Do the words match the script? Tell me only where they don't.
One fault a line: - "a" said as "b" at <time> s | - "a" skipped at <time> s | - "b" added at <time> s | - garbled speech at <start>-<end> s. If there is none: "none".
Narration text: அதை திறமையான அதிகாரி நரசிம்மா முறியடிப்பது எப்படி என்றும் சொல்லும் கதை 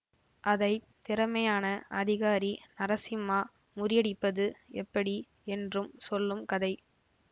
none